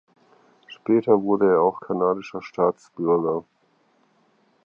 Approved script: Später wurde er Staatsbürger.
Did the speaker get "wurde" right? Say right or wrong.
right